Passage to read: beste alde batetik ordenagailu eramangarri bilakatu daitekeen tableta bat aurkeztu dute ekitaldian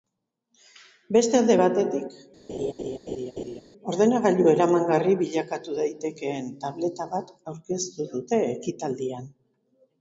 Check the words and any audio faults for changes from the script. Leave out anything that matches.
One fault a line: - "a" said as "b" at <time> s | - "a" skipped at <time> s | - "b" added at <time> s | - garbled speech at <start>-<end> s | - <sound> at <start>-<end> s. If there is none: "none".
- laugh at 2.5-3.6 s